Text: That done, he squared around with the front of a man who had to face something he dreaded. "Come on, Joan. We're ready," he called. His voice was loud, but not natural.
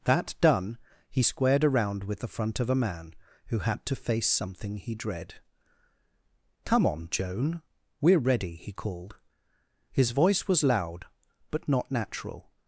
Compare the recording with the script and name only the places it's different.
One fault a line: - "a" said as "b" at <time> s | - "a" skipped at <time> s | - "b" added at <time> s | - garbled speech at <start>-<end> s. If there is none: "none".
- "dreaded" said as "dread" at 4.9 s